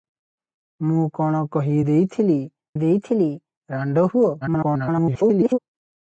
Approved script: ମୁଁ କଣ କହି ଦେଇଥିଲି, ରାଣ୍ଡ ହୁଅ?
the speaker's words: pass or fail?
fail